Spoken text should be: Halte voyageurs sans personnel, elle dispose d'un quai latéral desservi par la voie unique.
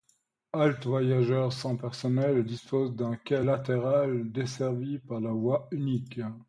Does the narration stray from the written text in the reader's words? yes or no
no